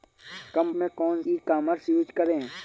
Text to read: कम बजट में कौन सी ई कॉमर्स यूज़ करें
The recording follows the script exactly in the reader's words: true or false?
false